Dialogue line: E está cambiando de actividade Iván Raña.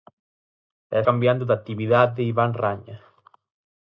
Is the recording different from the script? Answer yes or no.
yes